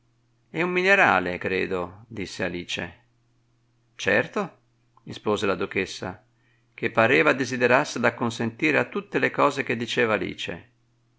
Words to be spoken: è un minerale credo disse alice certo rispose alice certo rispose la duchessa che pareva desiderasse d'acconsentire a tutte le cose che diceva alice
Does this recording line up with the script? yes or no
no